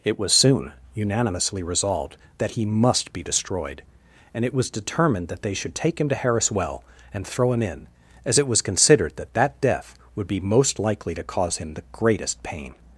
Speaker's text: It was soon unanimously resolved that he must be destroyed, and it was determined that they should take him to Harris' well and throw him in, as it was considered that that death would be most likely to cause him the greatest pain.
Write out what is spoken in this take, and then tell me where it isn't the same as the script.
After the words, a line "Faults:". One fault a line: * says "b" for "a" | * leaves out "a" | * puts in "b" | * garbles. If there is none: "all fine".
It was soon unanimously resolved that he must be destroyed, and it was determined that they should take him to Harris' well and throw him in, as it was considered that that death would be most likely to cause him the greatest pain.
Faults:
all fine